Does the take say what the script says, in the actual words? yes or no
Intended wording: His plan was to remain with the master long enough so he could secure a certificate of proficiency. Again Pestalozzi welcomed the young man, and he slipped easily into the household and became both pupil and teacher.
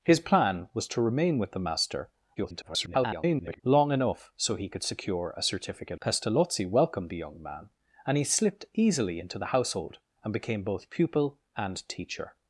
no